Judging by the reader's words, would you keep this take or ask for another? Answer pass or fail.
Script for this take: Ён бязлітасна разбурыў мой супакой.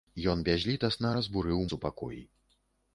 fail